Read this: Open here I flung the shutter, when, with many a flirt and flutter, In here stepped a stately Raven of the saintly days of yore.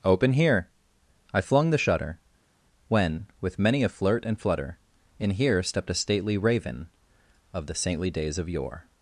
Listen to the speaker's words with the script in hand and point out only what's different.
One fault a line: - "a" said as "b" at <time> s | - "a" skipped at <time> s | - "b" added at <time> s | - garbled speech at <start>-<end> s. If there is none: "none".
none